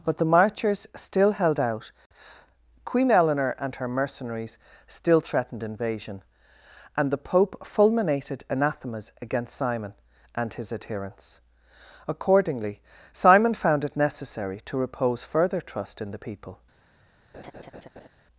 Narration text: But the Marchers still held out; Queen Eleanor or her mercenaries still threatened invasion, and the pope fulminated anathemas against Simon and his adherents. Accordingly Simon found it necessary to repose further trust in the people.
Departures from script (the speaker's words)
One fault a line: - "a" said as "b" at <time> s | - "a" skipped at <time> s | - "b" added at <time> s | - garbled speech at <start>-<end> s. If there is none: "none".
- "or" said as "and" at 3.6 s